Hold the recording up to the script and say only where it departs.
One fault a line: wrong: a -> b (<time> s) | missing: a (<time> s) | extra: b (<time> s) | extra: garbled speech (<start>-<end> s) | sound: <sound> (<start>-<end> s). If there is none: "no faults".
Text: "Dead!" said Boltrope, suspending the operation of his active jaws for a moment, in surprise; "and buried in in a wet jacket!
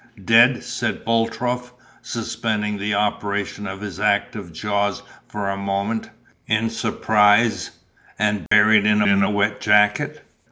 sound: dropout (8.5-8.5 s)